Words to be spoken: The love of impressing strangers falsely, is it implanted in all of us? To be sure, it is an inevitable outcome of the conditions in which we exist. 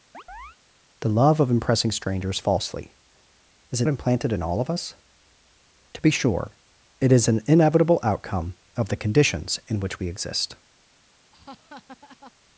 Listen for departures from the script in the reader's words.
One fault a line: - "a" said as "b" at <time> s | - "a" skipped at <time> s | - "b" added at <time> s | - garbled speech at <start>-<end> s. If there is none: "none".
none